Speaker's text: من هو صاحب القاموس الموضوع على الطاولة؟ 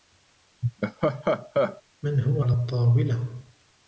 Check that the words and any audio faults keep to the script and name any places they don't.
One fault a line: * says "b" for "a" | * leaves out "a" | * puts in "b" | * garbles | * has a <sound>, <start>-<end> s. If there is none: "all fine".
* has a laugh, 0.6-1.8 s
* leaves out "صاحب القاموس الموضوع"